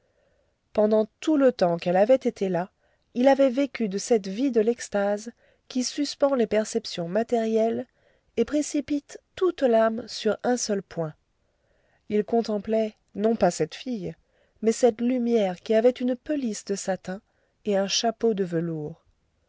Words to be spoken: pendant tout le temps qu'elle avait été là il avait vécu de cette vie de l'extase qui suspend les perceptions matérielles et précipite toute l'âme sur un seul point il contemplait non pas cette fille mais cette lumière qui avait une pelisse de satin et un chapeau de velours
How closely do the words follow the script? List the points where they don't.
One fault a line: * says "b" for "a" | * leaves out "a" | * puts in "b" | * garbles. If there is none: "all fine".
all fine